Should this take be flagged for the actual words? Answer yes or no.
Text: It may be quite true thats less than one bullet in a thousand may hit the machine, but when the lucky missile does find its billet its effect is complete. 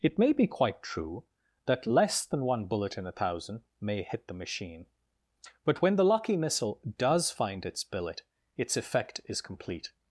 yes